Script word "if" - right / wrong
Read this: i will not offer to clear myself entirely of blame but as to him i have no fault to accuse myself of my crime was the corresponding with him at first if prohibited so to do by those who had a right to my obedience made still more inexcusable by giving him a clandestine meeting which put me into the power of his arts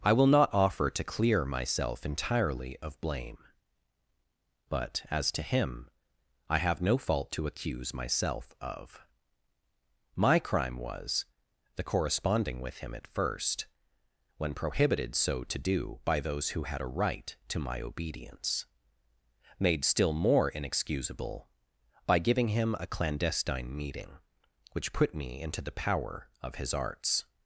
wrong